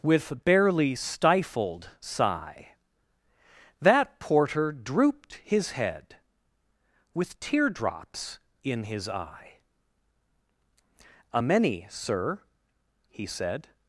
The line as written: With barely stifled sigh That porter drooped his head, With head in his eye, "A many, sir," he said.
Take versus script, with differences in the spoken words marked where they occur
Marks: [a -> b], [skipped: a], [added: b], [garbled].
With barely stifled sigh That porter drooped his head, With [head -> teardrops] in his eye, "A many, sir," he said.